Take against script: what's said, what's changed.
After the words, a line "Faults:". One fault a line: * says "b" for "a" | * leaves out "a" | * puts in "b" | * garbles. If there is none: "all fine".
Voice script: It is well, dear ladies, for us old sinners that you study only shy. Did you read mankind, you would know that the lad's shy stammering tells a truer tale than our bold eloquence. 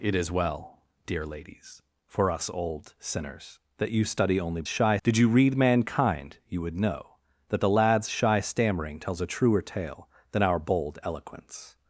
It is well, dear ladies, for us old sinners that you study only shy. Did you read mankind, you would know that the lad's shy stammering tells a truer tale than our bold eloquence.
Faults:
all fine